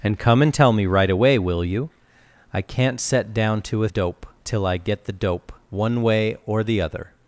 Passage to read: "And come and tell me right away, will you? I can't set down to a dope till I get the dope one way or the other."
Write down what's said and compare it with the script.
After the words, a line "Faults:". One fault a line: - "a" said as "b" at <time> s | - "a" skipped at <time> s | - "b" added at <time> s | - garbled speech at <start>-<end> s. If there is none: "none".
"And come and tell me right away, will you? I can't set down to a dope till I get the dope one way or the other."
Faults:
none